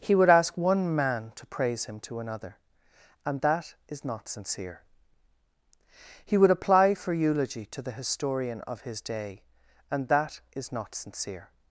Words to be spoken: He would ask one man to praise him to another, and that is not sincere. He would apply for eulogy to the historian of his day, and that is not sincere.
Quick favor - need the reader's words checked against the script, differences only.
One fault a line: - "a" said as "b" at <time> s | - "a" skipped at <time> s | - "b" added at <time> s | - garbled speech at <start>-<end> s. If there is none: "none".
none